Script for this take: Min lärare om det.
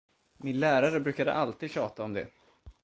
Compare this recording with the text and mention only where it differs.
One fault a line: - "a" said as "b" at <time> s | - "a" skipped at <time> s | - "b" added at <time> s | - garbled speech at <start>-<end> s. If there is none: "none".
- "brukade alltid tjata" added at 1.0 s